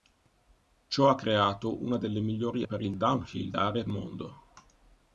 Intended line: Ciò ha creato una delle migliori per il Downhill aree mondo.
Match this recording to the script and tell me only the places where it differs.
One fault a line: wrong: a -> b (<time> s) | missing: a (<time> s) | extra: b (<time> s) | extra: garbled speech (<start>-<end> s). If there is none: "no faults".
no faults